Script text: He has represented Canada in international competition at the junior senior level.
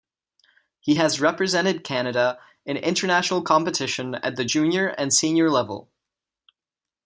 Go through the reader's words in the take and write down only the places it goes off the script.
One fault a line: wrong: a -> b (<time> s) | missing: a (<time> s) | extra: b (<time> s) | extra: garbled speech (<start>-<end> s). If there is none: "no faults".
extra: and (4.9 s)